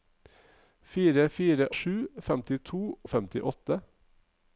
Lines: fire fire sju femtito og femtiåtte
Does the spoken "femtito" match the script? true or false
true